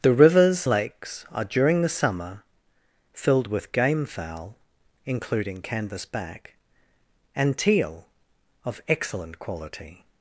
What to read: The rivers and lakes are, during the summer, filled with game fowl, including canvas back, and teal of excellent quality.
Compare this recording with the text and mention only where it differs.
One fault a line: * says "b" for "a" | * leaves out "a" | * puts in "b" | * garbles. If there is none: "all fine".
* leaves out "and"